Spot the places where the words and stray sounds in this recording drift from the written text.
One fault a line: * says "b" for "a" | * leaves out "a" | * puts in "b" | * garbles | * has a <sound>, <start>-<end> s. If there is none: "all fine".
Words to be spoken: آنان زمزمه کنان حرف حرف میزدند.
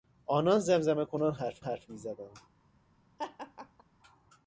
* has a laugh, 3.2-3.8 s